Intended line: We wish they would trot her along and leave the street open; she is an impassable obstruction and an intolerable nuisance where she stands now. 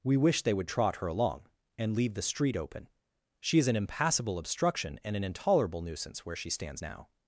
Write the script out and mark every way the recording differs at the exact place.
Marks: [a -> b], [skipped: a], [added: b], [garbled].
We wish they would trot her along and leave the street open; she is an impassable obstruction and an intolerable nuisance where she stands now.